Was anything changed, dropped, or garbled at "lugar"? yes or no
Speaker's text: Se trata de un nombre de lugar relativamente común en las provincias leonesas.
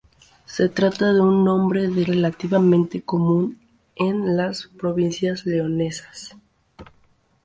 yes